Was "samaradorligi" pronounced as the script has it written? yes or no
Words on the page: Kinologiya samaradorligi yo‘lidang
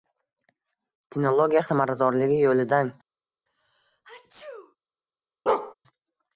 yes